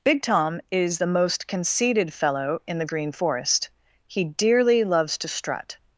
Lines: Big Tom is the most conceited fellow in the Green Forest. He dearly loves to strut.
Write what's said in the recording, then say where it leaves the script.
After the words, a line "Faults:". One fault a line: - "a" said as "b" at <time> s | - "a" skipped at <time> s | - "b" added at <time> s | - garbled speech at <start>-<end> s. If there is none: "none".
Big Tom is the most conceited fellow in the Green Forest. He dearly loves to strut.
Faults:
none